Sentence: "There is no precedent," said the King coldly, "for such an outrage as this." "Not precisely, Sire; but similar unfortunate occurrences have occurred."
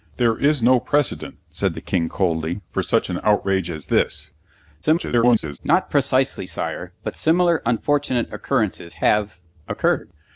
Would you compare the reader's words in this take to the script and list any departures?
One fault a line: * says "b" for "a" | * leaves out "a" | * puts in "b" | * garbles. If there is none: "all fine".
* garbles